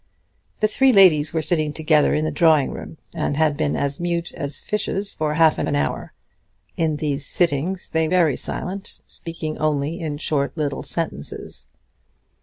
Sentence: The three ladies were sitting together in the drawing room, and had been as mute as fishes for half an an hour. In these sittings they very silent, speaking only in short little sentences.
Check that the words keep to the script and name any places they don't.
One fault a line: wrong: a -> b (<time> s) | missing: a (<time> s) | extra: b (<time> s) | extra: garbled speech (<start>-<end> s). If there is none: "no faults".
no faults